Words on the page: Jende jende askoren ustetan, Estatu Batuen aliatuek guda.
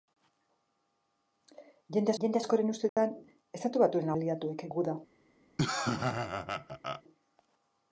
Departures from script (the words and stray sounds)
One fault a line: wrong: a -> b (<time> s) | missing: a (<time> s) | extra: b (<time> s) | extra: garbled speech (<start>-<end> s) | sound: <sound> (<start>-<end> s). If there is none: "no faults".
sound: dropout (2.9-3.0 s)
sound: laugh (5.6-7.0 s)